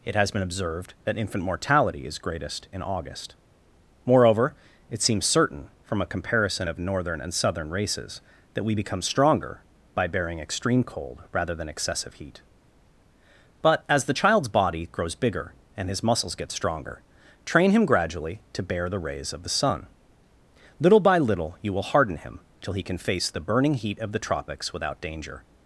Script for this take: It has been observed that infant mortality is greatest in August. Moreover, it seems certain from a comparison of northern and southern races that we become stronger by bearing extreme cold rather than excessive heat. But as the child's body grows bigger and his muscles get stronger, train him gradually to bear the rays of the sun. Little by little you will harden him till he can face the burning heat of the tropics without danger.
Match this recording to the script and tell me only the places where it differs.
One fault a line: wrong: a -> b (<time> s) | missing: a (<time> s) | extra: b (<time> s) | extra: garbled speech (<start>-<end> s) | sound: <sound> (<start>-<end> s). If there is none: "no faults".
no faults